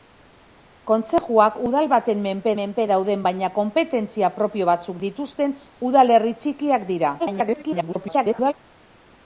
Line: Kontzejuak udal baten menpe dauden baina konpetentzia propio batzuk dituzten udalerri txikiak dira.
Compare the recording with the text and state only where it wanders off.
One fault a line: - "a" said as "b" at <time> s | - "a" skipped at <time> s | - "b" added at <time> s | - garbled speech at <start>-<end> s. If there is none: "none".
- "menpe" added at 2.6 s
- garbled speech at 7.2-8.5 s